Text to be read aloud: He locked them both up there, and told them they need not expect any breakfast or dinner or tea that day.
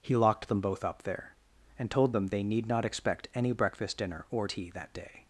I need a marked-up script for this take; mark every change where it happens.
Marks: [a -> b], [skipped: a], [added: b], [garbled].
He locked them both up there, and told them they need not expect any breakfast [skipped: or] dinner or tea that day.